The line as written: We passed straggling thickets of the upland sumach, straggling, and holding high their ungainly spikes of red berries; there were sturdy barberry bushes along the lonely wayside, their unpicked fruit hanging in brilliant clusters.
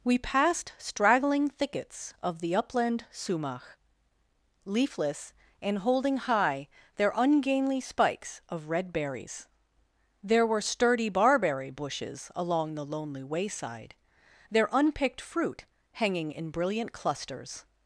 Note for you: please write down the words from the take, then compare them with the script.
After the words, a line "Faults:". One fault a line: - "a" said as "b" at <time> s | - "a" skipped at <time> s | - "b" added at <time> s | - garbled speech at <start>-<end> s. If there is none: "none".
We passed straggling thickets of the upland sumach, leafless, and holding high their ungainly spikes of red berries; there were sturdy barberry bushes along the lonely wayside, their unpicked fruit hanging in brilliant clusters.
Faults:
- "straggling" said as "leafless" at 4.7 s